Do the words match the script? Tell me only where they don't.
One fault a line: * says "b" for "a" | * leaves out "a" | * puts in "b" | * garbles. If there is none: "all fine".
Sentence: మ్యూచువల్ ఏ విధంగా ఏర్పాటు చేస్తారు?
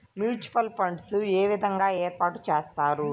* puts in "ఫండ్స్"